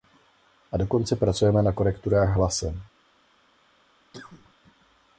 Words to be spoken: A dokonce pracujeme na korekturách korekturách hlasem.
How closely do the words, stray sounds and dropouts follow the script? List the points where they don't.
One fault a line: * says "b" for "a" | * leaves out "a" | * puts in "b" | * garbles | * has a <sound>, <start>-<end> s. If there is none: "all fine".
* leaves out "korekturách"
* has a cough, 4.1-4.5 s